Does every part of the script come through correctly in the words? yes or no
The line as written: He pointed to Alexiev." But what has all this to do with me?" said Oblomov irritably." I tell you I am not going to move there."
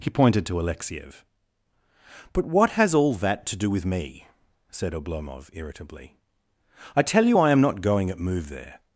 no